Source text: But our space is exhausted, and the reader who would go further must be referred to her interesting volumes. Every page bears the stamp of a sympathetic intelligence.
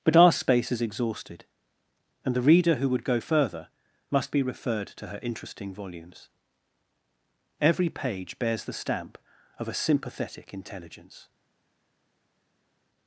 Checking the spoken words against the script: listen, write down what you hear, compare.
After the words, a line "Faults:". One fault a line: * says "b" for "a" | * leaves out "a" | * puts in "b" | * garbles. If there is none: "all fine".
But our space is exhausted, and the reader who would go further must be referred to her interesting volumes. Every page bears the stamp of a sympathetic intelligence.
Faults:
all fine